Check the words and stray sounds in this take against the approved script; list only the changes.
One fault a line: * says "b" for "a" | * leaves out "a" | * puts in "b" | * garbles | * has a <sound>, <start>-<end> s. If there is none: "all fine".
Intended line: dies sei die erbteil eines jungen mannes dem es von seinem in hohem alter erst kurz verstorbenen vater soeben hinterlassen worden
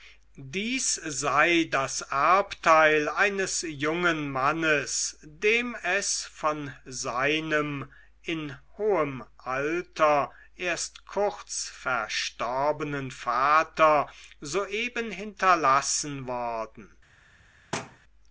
* says "das" for "die"
* has a thud, 17.7-18.0 s